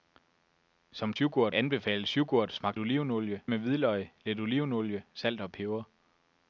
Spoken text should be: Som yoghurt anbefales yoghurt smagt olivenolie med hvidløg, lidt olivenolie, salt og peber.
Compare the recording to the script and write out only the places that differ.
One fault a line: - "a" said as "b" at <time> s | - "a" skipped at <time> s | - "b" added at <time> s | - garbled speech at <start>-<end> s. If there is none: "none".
none